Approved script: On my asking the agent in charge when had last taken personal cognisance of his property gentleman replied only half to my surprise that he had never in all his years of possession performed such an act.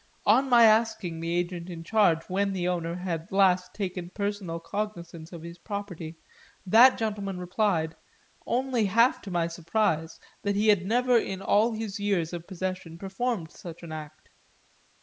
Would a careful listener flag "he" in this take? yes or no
no